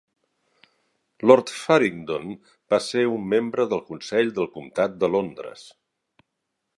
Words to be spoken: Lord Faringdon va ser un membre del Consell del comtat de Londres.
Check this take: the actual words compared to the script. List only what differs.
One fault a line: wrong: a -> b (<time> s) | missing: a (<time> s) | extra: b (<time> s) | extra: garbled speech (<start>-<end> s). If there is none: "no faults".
no faults